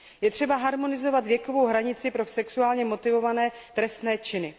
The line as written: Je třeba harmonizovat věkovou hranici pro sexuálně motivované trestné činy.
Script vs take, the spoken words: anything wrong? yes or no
no